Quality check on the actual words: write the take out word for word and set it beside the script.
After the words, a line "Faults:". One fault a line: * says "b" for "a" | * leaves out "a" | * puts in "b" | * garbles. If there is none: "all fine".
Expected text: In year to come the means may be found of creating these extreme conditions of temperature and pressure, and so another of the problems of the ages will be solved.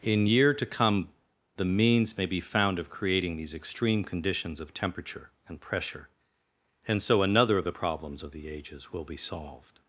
In year to come the means may be found of creating these extreme conditions of temperature and pressure, and so another of the problems of the ages will be solved.
Faults:
all fine